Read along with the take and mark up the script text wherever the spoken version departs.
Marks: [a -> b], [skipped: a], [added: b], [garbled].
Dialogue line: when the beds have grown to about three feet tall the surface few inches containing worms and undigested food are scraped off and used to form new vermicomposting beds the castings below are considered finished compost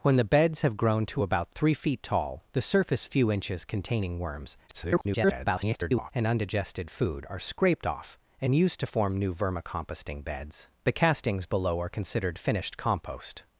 when the beds have grown to about three feet tall the surface few inches containing worms [garbled] and undigested food are scraped off and used to form new vermicomposting beds the castings below are considered finished compost